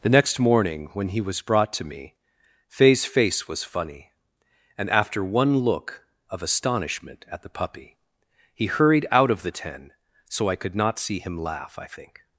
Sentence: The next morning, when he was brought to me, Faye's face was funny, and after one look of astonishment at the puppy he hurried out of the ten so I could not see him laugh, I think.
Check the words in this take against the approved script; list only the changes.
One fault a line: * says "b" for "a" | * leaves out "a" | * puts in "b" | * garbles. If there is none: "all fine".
all fine